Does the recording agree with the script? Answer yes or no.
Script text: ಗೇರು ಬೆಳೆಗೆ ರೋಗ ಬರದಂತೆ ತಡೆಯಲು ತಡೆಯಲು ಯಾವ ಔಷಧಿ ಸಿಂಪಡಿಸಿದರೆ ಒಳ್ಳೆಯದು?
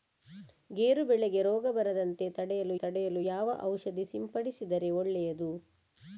yes